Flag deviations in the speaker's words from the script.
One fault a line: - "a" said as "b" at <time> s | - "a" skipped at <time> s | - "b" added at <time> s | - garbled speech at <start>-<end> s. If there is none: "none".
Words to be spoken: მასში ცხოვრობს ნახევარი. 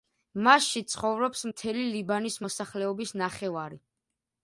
- "მთელი ლიბანის მოსახლეობის" added at 1.5 s